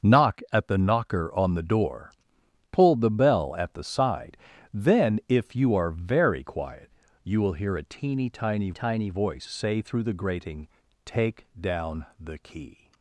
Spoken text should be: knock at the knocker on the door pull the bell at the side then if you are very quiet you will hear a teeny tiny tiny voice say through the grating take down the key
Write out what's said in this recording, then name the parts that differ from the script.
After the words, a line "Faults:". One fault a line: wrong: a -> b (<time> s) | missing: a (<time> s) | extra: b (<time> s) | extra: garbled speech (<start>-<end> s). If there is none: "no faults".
knock at the knocker on the door pull the bell at the side then if you are very quiet you will hear a teeny tiny tiny voice say through the grating take down the key
Faults:
no faults